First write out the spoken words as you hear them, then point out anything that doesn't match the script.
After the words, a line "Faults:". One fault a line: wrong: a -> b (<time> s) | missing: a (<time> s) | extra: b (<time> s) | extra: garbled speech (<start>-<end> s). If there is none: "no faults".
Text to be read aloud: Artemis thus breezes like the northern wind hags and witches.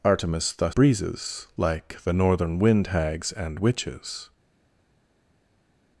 Artemis thus breezes like the northern wind hags and witches.
Faults:
no faults